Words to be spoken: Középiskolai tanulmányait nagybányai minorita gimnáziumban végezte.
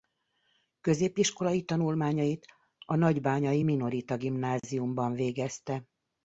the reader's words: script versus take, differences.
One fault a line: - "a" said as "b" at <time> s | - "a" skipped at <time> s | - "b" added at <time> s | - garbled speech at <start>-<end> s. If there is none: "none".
- "a" added at 2.9 s